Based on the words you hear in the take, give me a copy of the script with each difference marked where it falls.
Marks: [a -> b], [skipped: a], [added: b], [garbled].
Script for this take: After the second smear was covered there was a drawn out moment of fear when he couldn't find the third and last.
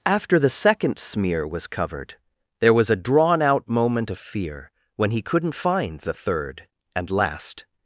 After the second smear was covered there was a drawn out moment of fear when he couldn't find the third and last.